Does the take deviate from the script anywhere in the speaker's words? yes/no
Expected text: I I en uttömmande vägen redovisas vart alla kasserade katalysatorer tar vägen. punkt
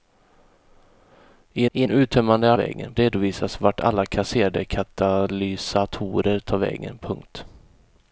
no